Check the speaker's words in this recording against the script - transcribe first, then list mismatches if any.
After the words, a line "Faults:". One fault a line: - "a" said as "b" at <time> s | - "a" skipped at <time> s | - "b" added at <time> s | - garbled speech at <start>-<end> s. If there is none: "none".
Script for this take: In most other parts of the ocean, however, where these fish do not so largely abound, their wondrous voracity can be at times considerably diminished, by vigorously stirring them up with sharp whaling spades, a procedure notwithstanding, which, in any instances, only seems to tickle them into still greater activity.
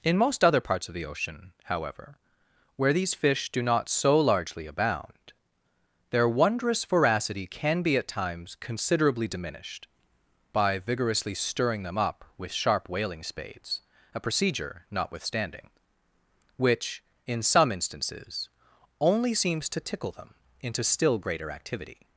In most other parts of the ocean, however, where these fish do not so largely abound, their wondrous voracity can be at times considerably diminished, by vigorously stirring them up with sharp whaling spades, a procedure notwithstanding, which, in some instances, only seems to tickle them into still greater activity.
Faults:
- "any" said as "some" at 17.4 s